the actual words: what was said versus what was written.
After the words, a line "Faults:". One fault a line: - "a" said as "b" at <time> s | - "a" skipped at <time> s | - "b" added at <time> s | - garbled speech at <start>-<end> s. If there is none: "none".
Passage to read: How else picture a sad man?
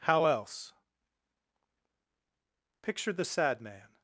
How else picture the sad man?
Faults:
- "a" said as "the" at 3.1 s